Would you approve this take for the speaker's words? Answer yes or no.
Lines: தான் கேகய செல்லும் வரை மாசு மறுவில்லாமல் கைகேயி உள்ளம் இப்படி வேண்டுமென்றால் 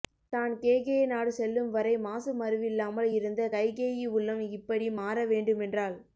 no